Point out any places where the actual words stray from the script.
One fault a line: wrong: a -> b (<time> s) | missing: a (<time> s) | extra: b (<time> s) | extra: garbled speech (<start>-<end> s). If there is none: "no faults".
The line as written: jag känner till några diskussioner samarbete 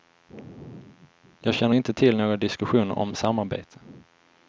extra: inte (1.7 s)
extra: om (3.0 s)